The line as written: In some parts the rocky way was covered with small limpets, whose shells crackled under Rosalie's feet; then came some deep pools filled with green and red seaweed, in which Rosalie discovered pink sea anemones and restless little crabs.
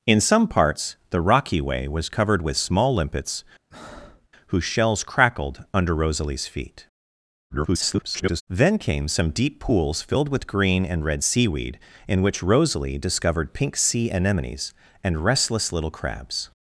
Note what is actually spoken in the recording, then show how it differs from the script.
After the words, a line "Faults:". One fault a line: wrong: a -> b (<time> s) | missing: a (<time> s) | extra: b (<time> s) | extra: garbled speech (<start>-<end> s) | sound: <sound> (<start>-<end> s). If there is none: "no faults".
In some parts the rocky way was covered with small limpets, whose shells crackled under Rosalie's feet; [garbled] then came some deep pools filled with green and red seaweed, in which Rosalie discovered pink sea anemones and restless little crabs.
Faults:
sound: breath (3.7-4.3 s)
extra: garbled speech (7.5-8.4 s)